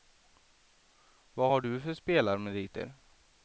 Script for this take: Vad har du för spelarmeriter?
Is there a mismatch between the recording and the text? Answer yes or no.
no